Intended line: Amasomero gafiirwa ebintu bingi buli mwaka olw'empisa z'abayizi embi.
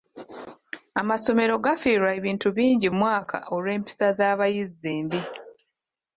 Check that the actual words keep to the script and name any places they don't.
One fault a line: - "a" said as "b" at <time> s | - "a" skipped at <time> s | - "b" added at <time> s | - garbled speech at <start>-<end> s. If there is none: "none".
- "buli" skipped at 2.9 s